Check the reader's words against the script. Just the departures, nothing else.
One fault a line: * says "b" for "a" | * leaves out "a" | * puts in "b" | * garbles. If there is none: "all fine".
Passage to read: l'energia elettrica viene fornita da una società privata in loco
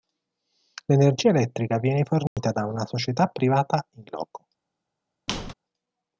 all fine